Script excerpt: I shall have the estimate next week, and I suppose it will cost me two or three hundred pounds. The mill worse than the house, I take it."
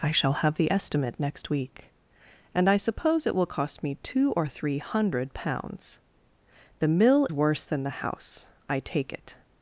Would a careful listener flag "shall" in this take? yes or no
no